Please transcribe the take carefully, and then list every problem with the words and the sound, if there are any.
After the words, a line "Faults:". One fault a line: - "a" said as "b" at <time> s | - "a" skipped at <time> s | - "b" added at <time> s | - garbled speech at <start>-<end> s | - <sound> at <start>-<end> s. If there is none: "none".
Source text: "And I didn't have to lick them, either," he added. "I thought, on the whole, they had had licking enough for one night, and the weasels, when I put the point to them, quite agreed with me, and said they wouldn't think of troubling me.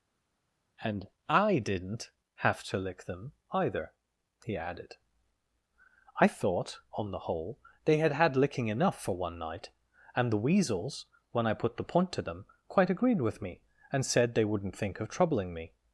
"And I didn't have to lick them, either," he added. "I thought, on the whole, they had had licking enough for one night, and the weasels, when I put the point to them, quite agreed with me, and said they wouldn't think of troubling me.
Faults:
none